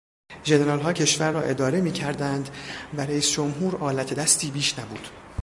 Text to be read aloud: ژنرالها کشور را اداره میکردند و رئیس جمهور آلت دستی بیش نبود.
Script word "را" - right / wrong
right